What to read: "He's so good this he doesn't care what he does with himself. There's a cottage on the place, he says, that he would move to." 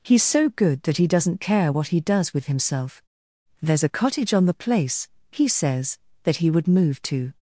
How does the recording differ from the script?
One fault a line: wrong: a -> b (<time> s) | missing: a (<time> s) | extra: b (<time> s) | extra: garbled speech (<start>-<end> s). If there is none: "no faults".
wrong: this -> that (0.8 s)